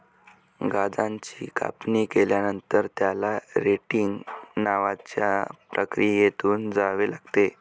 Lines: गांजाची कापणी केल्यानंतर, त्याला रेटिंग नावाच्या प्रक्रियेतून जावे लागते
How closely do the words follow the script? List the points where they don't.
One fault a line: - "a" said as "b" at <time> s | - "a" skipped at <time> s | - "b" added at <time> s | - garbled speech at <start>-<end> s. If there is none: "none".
none